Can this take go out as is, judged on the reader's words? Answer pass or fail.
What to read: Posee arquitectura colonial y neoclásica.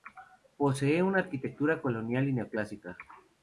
fail